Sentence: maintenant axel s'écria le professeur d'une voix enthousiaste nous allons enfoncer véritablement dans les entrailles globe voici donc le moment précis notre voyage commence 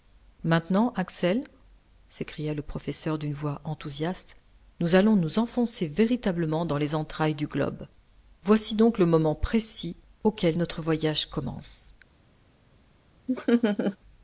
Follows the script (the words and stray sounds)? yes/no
no